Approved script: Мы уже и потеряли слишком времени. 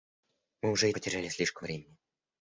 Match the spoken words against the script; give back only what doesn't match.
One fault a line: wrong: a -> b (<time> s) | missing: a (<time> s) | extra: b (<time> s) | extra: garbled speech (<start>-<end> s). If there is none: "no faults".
no faults